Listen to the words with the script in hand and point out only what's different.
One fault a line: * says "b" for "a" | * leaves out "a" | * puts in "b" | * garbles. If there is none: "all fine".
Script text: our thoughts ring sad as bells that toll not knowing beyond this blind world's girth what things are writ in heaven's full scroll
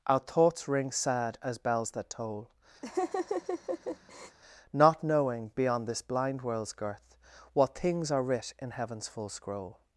all fine